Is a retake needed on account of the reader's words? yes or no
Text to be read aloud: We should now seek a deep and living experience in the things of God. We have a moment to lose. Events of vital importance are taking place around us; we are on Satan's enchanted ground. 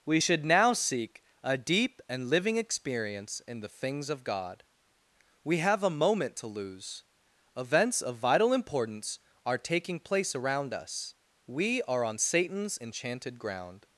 no